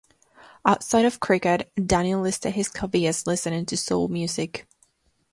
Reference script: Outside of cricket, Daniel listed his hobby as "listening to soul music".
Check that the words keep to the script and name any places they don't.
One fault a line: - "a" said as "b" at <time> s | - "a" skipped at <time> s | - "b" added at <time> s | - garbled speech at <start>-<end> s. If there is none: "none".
none